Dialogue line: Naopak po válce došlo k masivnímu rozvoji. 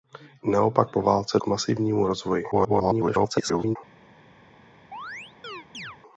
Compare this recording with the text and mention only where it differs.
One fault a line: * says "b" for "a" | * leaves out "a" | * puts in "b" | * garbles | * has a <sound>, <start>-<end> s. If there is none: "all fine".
* leaves out "došlo"
* garbles
* has a chirp, 4.9-6.0 s